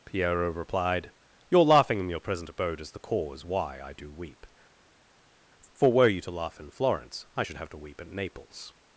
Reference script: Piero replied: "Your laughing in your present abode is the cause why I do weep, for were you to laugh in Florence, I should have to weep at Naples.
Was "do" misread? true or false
false